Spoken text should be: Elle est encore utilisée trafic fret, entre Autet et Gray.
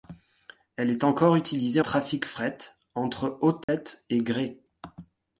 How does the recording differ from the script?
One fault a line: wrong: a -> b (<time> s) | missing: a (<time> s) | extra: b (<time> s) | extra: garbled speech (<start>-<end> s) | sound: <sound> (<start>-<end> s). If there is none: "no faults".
sound: dropout (3.6-3.7 s)